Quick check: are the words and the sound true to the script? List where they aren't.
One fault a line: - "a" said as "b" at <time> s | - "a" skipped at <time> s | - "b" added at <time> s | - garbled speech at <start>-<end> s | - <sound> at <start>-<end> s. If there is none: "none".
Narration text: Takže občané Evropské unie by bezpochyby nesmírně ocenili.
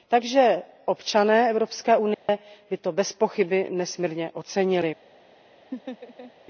- dropout at 2.1-2.3 s
- "to" added at 2.8 s
- laugh at 5.7-6.3 s